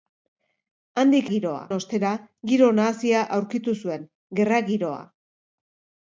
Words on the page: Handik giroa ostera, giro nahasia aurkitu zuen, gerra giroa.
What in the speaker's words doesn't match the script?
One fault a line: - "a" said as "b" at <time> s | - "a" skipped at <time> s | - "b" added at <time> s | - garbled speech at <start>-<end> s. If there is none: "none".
none